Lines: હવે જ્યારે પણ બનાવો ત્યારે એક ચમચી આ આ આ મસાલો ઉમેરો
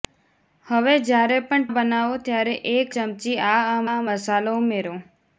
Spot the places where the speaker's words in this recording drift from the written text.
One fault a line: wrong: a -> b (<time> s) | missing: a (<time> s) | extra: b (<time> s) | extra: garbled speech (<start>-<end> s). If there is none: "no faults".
no faults